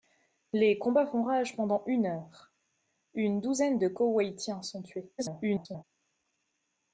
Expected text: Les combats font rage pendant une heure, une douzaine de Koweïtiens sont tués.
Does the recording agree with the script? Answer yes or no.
no